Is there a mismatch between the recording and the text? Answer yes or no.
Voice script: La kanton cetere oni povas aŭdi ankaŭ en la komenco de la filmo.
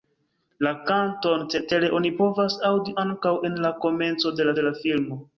yes